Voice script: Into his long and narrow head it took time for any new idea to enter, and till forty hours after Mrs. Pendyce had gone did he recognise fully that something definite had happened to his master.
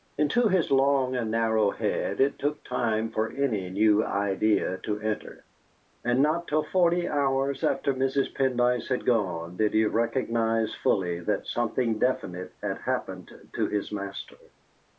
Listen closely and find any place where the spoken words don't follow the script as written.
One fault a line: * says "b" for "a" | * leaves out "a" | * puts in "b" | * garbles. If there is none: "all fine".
* puts in "not"